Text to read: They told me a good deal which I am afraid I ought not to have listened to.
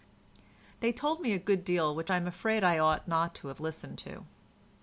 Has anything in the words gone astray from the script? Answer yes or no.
no